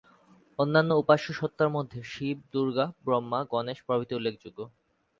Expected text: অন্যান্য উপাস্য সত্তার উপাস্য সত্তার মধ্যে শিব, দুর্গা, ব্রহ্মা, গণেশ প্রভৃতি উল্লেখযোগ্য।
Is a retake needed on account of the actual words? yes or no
yes